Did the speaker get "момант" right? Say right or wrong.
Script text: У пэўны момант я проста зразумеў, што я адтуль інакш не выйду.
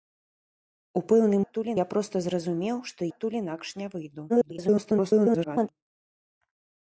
wrong